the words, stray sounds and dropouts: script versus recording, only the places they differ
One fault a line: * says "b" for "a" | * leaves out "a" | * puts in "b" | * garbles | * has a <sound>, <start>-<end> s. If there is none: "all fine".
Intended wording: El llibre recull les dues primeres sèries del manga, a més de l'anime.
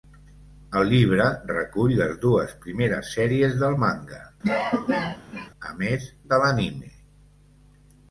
* has a cough, 4.4-5.5 s